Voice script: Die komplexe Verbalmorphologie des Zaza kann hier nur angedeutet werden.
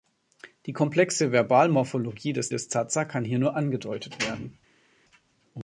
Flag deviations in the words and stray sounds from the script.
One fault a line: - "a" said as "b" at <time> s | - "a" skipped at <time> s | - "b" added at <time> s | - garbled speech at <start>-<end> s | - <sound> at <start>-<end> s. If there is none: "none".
- "des" added at 2.5 s